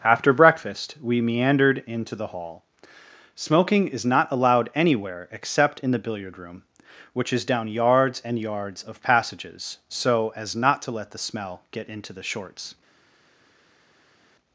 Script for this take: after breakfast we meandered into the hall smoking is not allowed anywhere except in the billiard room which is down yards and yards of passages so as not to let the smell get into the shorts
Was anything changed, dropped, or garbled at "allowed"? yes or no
no